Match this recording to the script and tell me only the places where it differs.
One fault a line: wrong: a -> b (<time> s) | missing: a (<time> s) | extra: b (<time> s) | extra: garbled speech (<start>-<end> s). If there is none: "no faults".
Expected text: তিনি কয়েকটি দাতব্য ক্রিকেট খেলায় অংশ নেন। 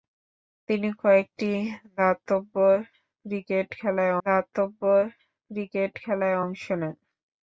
extra: দাতব্য ক্রিকেট খেলায় (4.2 s)